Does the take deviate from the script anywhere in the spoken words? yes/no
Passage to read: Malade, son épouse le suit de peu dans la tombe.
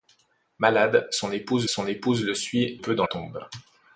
yes